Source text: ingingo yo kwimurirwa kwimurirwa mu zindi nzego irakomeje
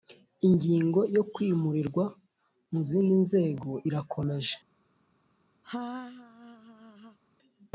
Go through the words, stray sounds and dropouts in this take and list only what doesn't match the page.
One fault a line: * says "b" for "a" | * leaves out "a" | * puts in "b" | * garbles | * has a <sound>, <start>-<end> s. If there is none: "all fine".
* leaves out "kwimurirwa"
* has a laugh, 5.6-7.2 s